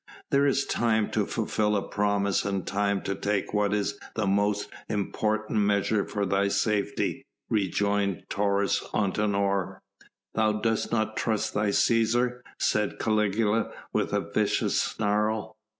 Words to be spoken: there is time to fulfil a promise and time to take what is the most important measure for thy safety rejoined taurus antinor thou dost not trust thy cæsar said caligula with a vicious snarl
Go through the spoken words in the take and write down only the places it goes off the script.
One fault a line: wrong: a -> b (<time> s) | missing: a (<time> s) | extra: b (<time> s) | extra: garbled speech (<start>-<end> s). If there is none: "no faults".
no faults